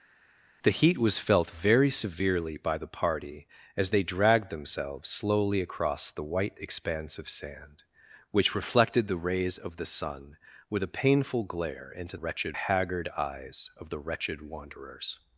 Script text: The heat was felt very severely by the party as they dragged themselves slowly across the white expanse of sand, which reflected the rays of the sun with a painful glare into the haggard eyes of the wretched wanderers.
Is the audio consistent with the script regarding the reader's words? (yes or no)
no